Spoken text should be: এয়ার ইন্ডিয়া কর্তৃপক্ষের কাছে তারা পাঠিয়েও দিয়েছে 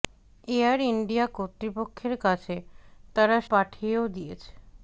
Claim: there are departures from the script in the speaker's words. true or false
false